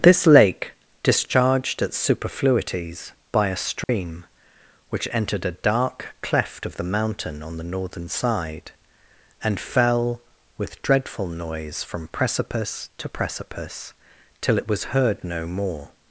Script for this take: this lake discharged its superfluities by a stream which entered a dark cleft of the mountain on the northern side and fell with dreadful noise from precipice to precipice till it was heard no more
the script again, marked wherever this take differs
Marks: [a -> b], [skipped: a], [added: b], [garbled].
this lake discharged its superfluities by a stream which entered a dark cleft of the mountain on the northern side and fell with dreadful noise from precipice to precipice till it was heard no more